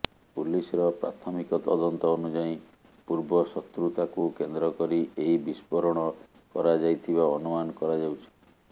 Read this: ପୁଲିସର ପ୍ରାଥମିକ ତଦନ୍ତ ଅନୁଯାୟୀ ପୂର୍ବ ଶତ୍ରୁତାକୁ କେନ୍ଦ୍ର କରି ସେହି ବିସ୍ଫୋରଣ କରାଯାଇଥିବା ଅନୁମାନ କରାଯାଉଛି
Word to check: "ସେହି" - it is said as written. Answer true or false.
false